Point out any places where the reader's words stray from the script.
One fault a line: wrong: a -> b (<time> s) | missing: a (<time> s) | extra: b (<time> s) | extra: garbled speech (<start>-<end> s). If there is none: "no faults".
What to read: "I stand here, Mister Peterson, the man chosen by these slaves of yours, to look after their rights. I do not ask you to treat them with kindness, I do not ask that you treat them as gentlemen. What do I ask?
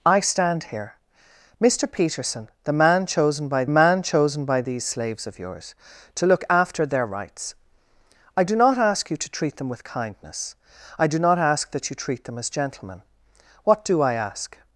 extra: man chosen by (3.7 s)